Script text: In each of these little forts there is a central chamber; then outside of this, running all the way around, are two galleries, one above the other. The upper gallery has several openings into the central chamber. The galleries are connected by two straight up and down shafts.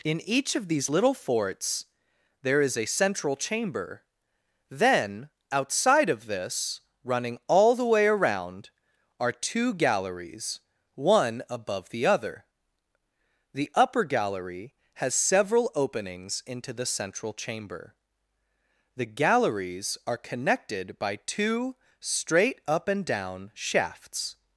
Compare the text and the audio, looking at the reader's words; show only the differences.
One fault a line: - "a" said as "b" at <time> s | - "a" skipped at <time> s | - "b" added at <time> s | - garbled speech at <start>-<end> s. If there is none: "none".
none